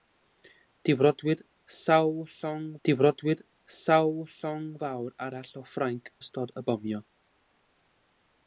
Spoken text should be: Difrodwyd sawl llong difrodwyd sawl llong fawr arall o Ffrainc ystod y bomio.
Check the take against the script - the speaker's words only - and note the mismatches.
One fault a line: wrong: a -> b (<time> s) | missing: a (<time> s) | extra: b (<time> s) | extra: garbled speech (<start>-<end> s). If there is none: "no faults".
no faults